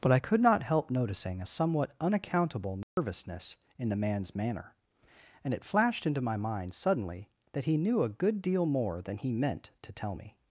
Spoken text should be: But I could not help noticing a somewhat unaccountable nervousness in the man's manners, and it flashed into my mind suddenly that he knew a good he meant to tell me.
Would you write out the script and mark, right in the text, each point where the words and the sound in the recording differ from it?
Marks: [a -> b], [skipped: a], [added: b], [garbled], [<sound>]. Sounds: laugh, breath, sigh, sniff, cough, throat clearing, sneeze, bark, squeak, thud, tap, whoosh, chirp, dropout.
But I could not help noticing a somewhat unaccountable nervousness [dropout] in the man's [manners, -> manner] and it flashed into my mind suddenly that he knew a good [added: deal more than] he meant to tell me.